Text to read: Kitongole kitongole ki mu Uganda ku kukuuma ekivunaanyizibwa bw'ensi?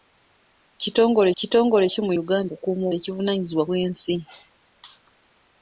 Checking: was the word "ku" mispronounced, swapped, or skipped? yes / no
no